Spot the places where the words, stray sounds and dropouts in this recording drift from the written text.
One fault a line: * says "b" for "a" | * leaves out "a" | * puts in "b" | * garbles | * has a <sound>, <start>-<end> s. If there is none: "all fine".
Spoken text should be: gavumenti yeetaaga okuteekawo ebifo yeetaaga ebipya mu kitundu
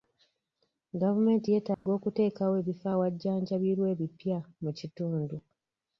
* has a dropout, 1.7-1.9 s
* says "awajjanjabirwa" for "yeetaaga"